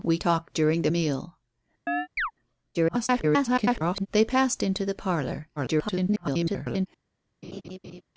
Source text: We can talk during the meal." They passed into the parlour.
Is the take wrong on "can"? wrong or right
wrong